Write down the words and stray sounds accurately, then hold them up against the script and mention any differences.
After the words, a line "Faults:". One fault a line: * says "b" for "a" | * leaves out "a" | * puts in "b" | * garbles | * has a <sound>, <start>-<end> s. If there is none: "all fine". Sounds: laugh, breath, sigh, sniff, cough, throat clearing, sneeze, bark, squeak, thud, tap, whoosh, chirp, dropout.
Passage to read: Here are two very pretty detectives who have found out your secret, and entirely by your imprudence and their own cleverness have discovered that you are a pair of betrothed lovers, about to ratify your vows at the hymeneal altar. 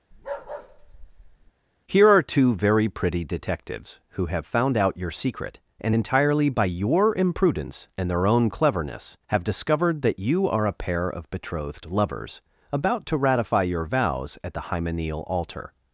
Here are two very pretty detectives who have found out your secret, and entirely by your imprudence and their own cleverness have discovered that you are a pair of betrothed lovers, about to ratify your vows at the hymeneal altar.
Faults:
* has a bark, 0.1-1.5 s